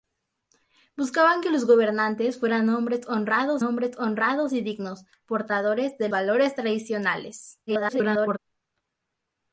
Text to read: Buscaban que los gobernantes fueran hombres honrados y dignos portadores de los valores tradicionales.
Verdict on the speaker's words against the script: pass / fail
fail